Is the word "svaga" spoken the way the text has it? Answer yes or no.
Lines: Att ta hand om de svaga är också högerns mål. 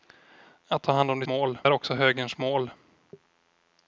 no